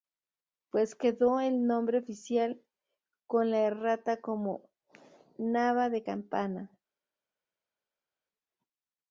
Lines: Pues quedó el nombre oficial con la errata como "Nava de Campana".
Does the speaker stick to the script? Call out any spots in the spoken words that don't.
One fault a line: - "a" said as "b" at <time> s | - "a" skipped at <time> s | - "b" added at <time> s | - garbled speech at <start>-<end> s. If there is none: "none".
none